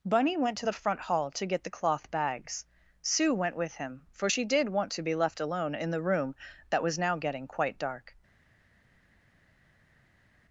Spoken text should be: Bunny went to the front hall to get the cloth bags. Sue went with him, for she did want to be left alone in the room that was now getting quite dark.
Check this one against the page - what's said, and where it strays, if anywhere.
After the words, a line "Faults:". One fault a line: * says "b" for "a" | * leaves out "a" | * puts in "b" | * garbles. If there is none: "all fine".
Bunny went to the front hall to get the cloth bags. Sue went with him, for she did want to be left alone in the room that was now getting quite dark.
Faults:
all fine